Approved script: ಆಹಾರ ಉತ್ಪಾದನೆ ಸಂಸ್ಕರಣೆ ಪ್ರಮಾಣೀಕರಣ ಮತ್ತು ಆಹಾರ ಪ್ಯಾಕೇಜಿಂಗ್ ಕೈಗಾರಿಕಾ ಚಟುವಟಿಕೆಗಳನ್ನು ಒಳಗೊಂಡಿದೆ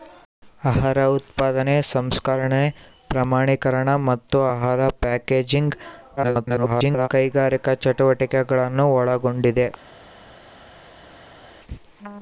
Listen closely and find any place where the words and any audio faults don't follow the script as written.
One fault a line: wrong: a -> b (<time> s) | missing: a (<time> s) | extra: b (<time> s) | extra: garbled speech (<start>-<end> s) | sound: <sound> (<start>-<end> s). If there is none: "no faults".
extra: garbled speech (6.2-7.1 s)